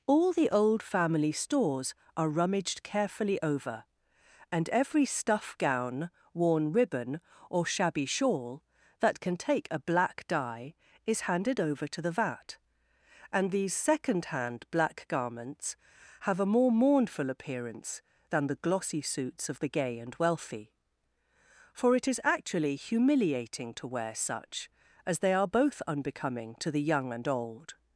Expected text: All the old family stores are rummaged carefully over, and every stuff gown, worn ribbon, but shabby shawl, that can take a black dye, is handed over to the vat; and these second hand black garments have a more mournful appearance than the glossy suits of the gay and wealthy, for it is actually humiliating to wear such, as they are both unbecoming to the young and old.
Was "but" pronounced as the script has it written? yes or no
no